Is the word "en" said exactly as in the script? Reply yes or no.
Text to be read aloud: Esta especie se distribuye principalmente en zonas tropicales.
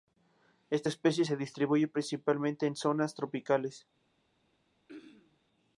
yes